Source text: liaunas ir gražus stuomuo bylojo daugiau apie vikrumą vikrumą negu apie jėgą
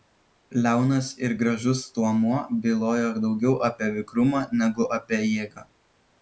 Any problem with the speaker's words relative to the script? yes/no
yes